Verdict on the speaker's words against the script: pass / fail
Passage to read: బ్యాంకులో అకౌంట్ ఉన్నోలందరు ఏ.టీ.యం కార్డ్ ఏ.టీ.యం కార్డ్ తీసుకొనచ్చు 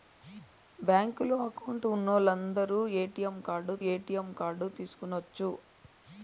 pass